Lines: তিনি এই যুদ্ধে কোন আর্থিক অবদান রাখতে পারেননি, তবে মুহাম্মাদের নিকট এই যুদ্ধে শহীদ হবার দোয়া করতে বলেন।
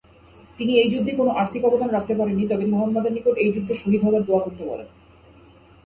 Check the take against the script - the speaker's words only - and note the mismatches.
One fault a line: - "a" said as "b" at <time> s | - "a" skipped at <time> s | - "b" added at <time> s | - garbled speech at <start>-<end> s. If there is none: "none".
none